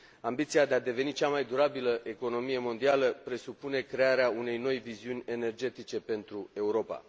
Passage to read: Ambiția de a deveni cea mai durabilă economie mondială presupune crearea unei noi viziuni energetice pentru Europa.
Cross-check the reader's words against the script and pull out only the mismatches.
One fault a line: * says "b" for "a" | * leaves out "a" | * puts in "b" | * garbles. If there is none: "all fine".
all fine